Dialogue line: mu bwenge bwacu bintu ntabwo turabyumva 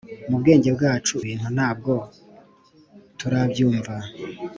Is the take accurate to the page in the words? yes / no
yes